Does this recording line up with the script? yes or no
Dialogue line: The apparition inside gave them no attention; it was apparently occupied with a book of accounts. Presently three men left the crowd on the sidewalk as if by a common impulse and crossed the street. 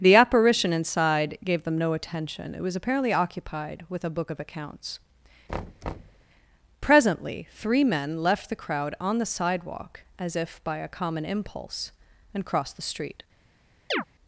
yes